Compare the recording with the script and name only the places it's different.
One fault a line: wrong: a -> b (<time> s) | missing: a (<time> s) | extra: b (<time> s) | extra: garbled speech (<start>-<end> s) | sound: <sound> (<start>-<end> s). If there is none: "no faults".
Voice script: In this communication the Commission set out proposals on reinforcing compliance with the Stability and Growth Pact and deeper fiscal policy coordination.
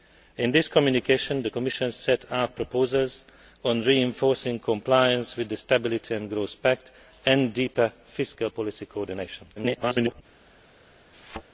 extra: garbled speech (9.6-10.2 s)
sound: thud (11.1-11.4 s)